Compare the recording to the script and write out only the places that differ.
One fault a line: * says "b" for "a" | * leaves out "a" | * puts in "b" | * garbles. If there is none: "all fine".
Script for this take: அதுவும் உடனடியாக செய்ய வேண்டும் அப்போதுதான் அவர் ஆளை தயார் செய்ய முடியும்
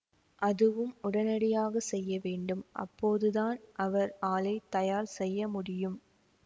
all fine